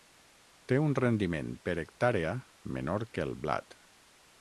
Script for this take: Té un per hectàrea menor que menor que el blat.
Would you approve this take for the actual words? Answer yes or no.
no